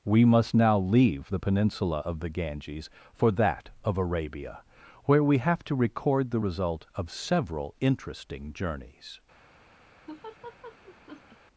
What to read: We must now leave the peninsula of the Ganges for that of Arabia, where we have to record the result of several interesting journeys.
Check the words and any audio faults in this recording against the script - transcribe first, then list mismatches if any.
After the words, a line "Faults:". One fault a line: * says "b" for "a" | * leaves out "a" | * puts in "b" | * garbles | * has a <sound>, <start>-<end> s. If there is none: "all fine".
We must now leave the peninsula of the Ganges for that of Arabia, where we have to record the result of several interesting journeys.
Faults:
* has a laugh, 10.1-11.4 s